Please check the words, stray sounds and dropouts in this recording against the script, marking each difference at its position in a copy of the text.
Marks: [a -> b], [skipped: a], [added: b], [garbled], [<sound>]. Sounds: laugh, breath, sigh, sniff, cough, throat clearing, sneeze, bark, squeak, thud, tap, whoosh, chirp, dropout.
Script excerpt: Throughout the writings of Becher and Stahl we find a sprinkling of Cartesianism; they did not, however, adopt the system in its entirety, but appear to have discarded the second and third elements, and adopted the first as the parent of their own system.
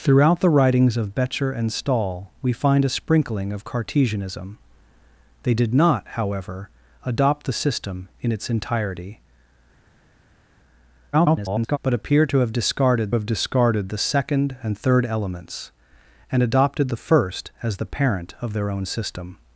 Throughout the writings of Becher and Stahl we find a sprinkling of Cartesianism; they did not, however, adopt the system in its entirety, [garbled] but appear to have discarded [added: have discarded] the second and third elements, and adopted the first as the parent of their own system.